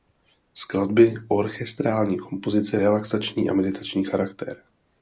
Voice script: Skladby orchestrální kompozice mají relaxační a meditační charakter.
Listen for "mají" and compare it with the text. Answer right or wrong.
wrong